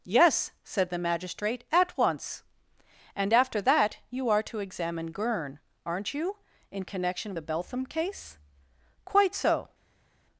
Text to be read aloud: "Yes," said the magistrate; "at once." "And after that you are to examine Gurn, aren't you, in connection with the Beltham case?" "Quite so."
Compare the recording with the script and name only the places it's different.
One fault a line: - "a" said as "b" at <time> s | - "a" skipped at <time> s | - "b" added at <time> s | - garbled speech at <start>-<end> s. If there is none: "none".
- "with" skipped at 7.3 s